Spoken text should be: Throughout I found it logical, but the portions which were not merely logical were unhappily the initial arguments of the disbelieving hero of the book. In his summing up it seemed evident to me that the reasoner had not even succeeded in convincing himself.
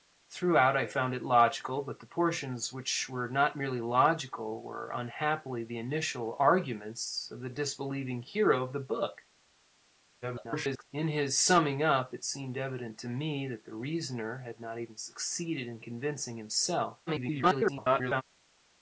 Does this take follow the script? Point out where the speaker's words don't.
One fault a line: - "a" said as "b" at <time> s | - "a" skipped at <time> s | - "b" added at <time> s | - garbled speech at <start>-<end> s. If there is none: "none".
- garbled speech at 10.2-10.8 s
- garbled speech at 17.1-18.2 s